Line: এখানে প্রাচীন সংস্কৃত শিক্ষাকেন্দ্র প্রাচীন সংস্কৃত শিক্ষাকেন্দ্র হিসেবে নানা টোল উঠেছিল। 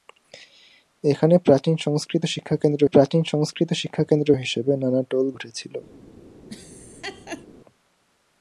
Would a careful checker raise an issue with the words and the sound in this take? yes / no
yes